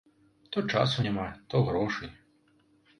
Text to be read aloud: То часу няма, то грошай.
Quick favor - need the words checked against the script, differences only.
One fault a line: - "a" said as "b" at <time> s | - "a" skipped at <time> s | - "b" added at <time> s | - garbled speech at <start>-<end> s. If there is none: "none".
none